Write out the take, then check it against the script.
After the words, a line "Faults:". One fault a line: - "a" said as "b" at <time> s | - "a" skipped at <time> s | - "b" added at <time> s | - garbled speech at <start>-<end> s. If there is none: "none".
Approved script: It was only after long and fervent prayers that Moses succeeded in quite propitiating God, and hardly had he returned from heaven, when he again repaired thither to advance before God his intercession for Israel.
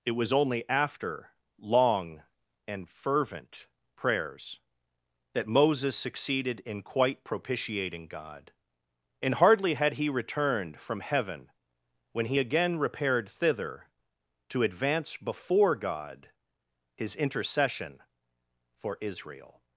It was only after long and fervent prayers that Moses succeeded in quite propitiating God, and hardly had he returned from heaven, when he again repaired thither to advance before God his intercession for Israel.
Faults:
none